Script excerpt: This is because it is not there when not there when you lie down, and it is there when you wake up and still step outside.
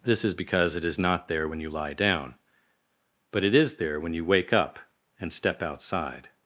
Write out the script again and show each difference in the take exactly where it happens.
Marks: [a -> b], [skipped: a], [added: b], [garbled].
This is because it is not there when [skipped: not there when] you lie down, [and -> but] it is there when you wake up and [skipped: still] step outside.